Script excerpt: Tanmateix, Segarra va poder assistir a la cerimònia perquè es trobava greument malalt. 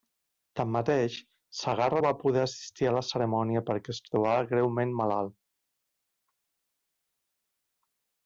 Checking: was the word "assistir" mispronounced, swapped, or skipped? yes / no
no